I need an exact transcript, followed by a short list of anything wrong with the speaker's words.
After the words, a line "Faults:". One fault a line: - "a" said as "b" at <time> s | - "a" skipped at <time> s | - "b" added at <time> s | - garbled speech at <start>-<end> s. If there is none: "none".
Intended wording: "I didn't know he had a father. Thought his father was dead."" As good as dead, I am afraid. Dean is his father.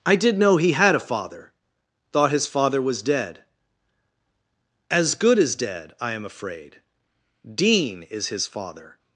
"I did know he had a father. Thought his father was dead."" As good as dead, I am afraid. Dean is his father.
Faults:
- "didn't" said as "did" at 0.1 s